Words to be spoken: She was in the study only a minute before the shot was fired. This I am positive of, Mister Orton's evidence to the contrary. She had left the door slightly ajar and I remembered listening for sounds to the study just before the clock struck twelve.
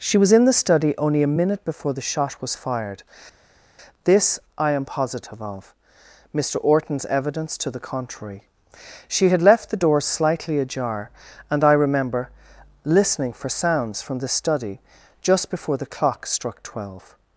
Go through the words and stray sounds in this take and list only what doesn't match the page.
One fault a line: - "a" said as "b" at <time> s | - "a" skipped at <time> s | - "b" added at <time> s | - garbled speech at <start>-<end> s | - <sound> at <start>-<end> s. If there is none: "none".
- "remembered" said as "remember" at 11.7 s
- "to" said as "from" at 14.0 s